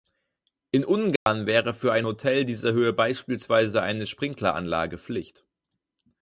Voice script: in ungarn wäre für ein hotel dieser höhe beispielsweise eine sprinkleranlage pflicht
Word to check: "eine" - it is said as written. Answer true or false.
true